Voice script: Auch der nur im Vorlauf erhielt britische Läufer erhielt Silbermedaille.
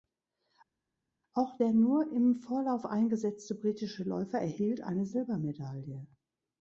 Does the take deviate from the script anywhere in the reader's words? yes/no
yes